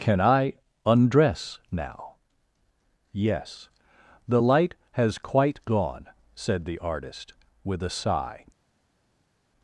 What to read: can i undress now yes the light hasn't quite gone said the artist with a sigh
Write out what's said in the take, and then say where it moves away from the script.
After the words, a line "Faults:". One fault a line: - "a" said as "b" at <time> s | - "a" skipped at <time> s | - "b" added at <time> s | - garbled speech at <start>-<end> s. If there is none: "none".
can i undress now yes the light has quite gone said the artist with a sigh
Faults:
- "hasn't" said as "has" at 4.9 s